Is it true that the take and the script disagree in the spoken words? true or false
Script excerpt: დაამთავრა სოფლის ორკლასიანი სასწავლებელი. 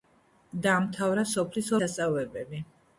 true